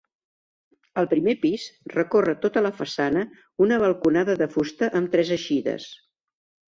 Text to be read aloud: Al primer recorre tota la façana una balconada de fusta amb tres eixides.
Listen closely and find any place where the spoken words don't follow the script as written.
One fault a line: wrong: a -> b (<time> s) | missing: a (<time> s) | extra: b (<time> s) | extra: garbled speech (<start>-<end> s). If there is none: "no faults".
extra: pis (1.4 s)